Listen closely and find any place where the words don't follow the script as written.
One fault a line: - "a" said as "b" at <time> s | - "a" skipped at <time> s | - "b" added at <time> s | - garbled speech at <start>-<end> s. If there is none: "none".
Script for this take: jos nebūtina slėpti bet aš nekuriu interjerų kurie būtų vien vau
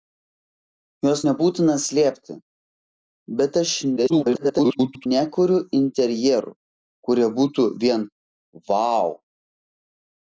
- garbled speech at 4.0-5.1 s